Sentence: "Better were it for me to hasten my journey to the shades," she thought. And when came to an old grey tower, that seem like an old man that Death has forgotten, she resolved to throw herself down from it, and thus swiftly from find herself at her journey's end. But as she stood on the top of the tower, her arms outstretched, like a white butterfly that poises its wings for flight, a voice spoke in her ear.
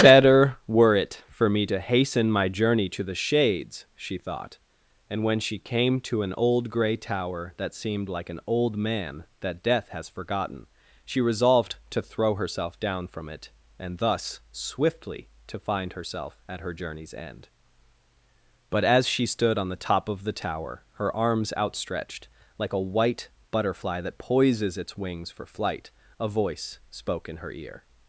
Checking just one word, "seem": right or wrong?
wrong